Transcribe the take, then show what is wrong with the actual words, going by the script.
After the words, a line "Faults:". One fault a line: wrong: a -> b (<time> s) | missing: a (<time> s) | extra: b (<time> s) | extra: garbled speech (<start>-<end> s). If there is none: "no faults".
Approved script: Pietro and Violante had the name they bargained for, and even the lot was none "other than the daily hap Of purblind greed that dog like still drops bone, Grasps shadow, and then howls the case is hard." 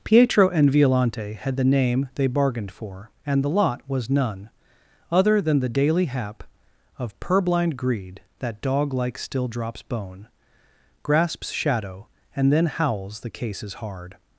Pietro and Violante had the name they bargained for, and the lot was none "other than the daily hap Of purblind greed that dog like still drops bone, Grasps shadow, and then howls the case is hard."
Faults:
missing: even (3.4 s)